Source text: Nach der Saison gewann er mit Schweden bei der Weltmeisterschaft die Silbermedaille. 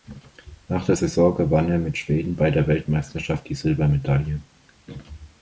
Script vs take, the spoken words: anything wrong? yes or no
no